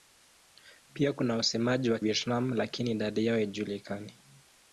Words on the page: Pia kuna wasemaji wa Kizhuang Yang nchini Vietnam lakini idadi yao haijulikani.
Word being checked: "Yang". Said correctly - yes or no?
no